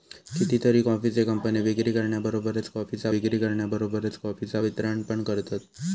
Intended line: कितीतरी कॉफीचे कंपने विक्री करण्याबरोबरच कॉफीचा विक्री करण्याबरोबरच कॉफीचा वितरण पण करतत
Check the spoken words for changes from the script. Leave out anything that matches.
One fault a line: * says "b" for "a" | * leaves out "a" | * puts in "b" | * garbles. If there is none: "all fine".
all fine